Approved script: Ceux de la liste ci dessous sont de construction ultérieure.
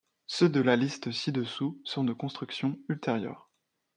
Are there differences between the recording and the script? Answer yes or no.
no